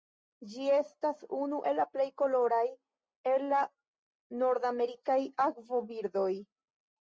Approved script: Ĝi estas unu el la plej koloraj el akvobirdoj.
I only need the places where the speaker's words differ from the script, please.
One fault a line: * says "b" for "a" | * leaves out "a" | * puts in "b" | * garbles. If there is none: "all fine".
* puts in "la nordamerikaj"